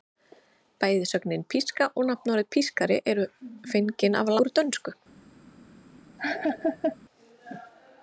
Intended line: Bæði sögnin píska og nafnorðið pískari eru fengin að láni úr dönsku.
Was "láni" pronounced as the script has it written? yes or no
no